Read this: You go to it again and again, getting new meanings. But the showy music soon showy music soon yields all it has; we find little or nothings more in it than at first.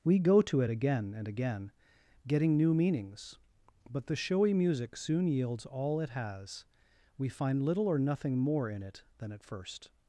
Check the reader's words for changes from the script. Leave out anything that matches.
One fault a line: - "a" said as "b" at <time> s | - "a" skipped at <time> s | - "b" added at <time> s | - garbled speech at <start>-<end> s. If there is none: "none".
- "You" said as "We" at 0.0 s
- "showy music soon" skipped at 5.3 s
- "nothings" said as "nothing" at 8.0 s